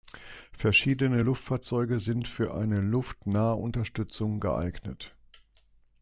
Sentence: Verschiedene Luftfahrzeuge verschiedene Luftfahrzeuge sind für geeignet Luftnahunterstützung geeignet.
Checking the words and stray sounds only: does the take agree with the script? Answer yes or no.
no